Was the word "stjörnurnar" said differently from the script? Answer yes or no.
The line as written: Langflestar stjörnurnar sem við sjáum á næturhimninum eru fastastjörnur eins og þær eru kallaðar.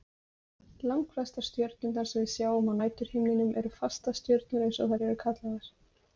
no